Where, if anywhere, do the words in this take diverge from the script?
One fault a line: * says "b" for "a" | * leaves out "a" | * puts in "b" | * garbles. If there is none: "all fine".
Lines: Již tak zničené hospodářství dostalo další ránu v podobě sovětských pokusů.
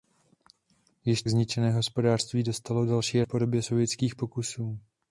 * leaves out "tak"
* leaves out "ránu"